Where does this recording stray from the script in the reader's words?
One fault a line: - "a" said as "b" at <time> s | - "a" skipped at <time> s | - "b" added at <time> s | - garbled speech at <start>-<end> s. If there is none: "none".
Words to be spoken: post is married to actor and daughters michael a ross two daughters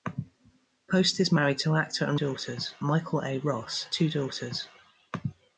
none